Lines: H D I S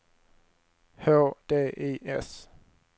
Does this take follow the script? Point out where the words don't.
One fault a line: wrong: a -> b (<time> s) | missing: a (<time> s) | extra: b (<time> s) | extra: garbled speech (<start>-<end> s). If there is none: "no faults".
no faults